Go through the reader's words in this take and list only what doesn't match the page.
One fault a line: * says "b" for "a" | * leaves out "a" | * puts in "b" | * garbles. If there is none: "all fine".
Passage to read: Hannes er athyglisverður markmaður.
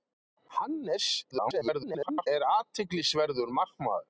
* garbles